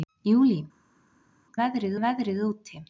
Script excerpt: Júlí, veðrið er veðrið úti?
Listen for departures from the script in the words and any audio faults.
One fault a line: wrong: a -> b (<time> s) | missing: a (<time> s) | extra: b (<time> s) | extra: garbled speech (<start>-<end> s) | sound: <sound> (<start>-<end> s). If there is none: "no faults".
no faults